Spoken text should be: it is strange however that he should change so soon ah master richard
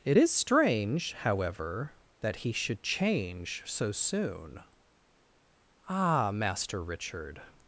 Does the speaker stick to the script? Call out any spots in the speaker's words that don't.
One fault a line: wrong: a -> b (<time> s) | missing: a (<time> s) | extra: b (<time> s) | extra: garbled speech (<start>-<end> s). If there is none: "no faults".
no faults